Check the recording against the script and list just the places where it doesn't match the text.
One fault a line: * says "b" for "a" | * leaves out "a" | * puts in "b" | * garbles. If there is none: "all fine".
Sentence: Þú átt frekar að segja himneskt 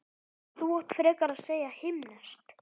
all fine